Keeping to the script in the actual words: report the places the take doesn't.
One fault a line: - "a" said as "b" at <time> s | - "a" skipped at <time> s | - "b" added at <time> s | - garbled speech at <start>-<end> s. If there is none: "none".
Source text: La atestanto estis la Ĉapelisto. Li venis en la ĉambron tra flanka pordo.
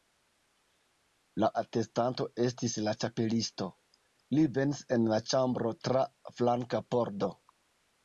none